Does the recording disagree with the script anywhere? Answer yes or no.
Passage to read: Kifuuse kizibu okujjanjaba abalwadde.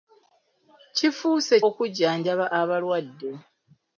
yes